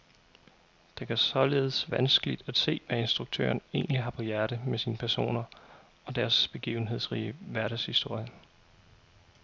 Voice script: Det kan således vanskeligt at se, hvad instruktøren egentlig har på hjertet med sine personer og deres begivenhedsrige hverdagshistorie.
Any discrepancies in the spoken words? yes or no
no